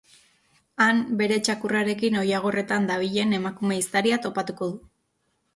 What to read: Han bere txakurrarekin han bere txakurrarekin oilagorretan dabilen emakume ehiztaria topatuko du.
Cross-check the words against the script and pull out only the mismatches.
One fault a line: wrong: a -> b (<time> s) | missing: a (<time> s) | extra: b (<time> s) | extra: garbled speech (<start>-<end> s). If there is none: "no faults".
missing: han bere txakurrarekin (2.2 s)